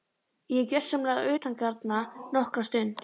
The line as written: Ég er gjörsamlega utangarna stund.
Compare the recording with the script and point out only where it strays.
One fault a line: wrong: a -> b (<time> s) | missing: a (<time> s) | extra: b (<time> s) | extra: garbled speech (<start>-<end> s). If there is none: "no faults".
extra: nokkra (2.4 s)